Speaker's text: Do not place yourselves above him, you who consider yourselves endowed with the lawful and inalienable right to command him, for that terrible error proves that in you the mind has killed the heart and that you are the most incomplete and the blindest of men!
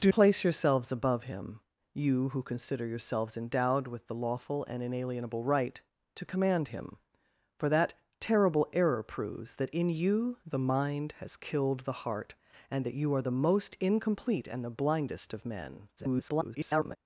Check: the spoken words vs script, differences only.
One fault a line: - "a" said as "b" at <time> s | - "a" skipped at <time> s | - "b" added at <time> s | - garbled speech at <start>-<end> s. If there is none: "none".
- "not" skipped at 0.1 s
- garbled speech at 16.0-17.0 s